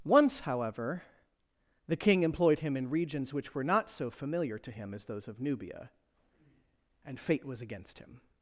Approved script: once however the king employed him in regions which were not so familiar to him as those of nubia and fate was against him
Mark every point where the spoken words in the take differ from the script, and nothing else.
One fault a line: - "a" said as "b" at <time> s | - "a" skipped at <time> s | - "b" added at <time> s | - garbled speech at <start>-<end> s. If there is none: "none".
none